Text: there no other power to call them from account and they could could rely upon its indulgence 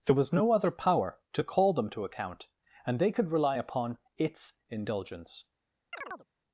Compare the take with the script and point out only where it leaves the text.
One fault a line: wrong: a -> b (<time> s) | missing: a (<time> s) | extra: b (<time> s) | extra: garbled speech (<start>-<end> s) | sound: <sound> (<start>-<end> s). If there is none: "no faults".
extra: was (0.1 s)
wrong: from -> to (1.9 s)
missing: could (3.3 s)
sound: chirp (5.9-6.3 s)